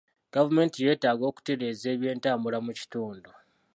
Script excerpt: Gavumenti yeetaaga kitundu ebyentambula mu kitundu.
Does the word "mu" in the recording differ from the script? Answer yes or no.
no